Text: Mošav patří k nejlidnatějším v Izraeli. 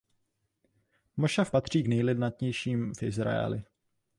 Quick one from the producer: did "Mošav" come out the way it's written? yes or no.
yes